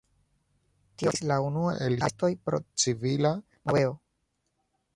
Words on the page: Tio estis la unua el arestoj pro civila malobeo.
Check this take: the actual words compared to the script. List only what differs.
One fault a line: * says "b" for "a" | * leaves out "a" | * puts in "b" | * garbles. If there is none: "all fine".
all fine